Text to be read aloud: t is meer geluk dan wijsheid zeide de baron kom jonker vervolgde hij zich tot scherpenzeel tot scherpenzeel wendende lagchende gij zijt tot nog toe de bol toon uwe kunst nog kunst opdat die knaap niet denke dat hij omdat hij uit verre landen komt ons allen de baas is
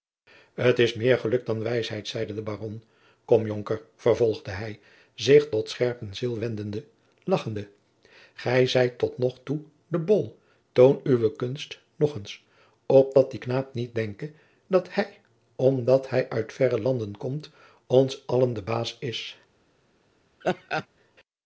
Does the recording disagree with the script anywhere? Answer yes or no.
yes